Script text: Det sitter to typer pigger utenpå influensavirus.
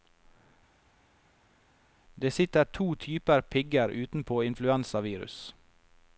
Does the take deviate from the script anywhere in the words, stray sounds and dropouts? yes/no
no